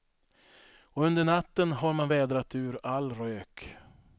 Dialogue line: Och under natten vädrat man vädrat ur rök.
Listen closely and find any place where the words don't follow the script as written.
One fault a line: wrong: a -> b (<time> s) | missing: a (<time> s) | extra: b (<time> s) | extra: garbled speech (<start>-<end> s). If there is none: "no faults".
wrong: vädrat -> har (1.7 s)
extra: all (2.8 s)